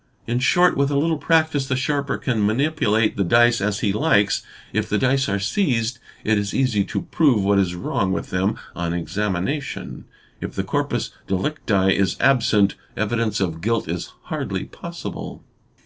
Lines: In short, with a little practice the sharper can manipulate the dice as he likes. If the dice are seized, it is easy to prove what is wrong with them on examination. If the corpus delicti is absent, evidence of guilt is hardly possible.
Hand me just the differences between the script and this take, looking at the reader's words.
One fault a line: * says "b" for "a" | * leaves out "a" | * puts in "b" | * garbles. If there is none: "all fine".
all fine